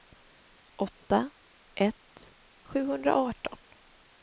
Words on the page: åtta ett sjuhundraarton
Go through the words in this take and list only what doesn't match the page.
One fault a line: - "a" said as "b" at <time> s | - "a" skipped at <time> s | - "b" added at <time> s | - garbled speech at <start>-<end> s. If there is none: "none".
none